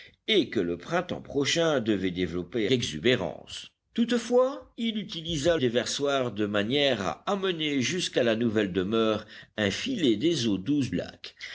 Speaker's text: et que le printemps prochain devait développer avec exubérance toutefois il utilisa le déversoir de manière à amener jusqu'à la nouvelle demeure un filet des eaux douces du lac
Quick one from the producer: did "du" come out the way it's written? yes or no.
no